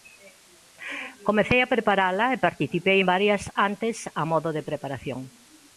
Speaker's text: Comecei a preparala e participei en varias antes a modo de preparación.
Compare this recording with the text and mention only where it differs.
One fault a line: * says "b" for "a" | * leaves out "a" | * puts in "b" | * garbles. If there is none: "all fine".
all fine